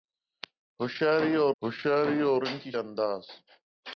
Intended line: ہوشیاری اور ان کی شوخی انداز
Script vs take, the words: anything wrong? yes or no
yes